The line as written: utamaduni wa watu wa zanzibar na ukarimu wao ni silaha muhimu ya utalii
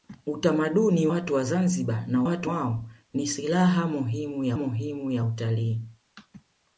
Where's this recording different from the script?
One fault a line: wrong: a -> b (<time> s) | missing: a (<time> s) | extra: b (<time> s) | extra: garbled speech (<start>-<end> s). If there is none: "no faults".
missing: wa (1.1 s)
wrong: ukarimu -> watu (2.2 s)
extra: muhimu ya (4.5 s)